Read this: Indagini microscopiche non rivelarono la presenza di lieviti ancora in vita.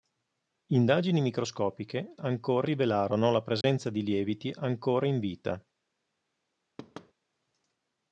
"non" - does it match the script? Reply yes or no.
no